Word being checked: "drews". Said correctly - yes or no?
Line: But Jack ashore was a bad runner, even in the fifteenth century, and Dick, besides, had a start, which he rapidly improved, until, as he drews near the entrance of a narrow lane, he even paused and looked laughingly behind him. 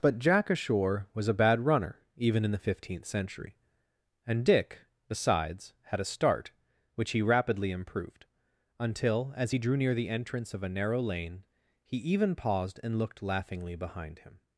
no